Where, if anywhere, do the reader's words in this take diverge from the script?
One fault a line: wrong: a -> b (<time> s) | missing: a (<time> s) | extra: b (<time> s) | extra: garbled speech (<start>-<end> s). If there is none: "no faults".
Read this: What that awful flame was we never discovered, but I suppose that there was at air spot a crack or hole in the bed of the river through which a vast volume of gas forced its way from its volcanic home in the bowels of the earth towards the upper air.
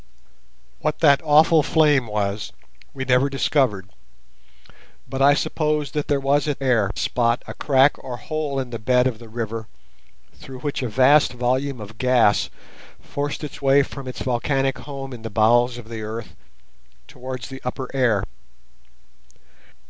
no faults